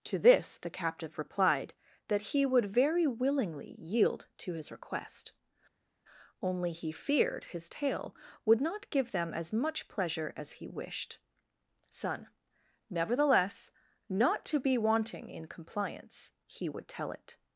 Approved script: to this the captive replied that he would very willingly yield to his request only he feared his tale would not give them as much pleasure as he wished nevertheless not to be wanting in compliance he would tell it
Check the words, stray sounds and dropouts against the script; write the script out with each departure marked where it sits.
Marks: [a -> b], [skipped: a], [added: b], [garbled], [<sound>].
to this the captive replied that he would very willingly yield to his request only he feared his tale would not give them as much pleasure as he wished [added: son] nevertheless not to be wanting in compliance he would tell it